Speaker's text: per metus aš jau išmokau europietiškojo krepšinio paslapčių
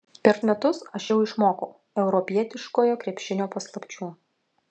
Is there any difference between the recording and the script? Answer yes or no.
no